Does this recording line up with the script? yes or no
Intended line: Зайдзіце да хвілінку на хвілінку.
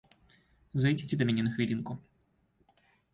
no